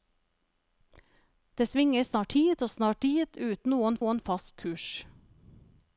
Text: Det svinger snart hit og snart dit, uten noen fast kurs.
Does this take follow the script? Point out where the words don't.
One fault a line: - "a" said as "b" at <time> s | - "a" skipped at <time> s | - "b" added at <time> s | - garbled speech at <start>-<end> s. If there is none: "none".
- "noen" added at 4.0 s